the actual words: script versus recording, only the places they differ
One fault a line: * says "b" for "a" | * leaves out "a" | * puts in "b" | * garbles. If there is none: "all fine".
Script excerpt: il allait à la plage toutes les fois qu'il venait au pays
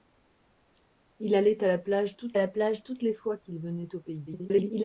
* puts in "la plage toutes"
* garbles